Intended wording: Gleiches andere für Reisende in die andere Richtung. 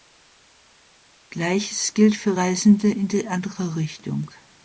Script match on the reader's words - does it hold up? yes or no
no